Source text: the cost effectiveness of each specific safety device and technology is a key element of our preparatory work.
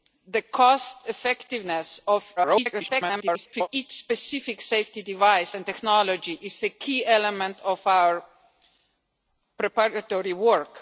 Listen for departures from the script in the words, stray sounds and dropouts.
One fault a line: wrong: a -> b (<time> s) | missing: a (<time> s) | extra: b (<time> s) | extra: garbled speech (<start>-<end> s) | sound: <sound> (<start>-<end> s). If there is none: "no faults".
extra: garbled speech (2.4-3.7 s)